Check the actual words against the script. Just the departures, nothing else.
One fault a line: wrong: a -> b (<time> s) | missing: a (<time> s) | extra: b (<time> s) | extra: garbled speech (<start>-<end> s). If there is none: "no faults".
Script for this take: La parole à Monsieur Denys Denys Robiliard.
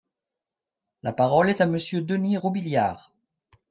extra: est (1.5 s)
missing: Denys (2.4 s)